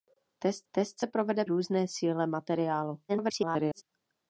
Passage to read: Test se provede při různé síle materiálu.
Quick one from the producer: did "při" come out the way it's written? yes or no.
no